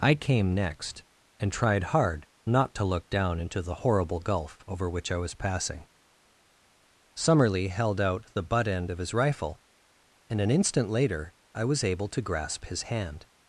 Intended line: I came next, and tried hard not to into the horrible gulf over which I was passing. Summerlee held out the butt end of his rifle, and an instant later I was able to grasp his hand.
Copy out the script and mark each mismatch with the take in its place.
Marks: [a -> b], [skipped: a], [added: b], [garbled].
I came next, and tried hard not to [added: look down] into the horrible gulf over which I was passing. Summerlee held out the butt end of his rifle, and an instant later I was able to grasp his hand.